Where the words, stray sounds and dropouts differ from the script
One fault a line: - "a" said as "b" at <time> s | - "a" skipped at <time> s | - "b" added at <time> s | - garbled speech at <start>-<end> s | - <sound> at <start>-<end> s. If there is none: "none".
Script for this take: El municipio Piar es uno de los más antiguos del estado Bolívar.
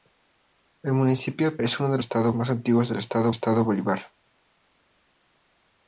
- "Piar" skipped at 1.6 s
- "los" said as "estado" at 2.0 s
- "estado" added at 3.3 s